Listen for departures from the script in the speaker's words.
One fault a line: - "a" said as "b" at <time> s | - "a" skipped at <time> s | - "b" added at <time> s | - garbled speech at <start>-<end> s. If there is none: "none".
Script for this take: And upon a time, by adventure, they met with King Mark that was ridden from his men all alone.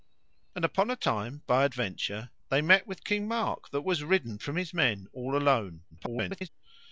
- garbled speech at 5.9-6.5 s